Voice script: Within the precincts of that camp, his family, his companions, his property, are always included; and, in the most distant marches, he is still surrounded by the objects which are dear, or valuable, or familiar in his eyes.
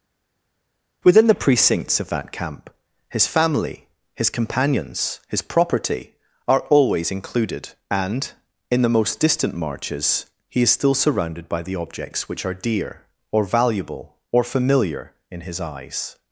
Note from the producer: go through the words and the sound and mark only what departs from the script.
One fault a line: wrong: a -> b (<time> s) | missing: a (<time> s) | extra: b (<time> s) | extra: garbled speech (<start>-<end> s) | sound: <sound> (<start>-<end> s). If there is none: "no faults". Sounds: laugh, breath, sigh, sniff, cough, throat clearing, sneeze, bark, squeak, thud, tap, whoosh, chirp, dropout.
no faults